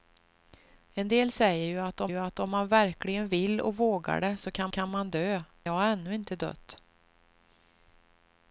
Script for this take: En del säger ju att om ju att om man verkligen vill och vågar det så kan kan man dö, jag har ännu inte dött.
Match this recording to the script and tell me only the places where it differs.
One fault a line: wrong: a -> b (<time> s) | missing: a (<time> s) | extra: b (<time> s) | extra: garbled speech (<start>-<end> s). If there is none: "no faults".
no faults